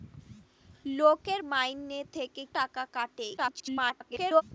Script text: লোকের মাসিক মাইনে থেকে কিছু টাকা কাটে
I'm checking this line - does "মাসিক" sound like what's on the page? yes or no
no